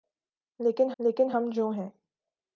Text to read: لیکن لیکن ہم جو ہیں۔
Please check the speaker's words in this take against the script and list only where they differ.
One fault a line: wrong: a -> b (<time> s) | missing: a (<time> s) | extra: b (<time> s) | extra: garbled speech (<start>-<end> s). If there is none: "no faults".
no faults